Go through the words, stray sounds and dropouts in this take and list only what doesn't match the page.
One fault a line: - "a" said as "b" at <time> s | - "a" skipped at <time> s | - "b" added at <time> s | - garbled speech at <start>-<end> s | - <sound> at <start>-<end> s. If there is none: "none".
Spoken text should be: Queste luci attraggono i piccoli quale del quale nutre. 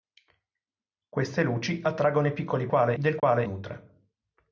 - dropout at 3.2-3.2 s